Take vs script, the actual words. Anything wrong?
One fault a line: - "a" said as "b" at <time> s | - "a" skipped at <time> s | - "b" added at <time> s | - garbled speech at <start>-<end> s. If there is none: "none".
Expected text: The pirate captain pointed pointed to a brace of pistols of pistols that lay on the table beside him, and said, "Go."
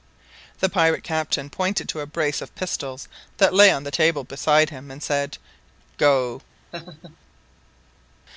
- "pointed" skipped at 1.9 s
- "of pistols" skipped at 3.1 s